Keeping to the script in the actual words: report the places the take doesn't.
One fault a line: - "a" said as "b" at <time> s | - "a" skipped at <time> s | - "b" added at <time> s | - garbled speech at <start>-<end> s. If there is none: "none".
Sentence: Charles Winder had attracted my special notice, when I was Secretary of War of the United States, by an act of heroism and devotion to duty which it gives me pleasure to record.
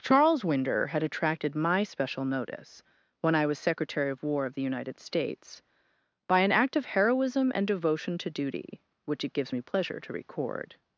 none